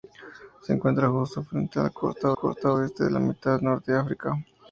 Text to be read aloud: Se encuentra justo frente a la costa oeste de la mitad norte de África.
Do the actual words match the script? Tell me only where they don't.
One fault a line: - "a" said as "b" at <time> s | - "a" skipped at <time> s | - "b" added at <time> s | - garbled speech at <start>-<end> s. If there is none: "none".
- "costa" added at 2.3 s